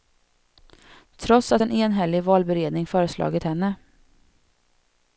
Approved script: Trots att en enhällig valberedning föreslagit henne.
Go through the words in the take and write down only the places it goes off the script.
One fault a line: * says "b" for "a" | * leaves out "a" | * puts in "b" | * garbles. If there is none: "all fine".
all fine